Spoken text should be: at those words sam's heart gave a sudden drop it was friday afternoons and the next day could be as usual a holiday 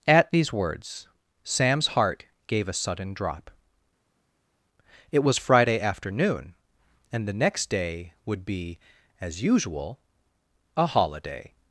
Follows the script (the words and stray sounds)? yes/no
no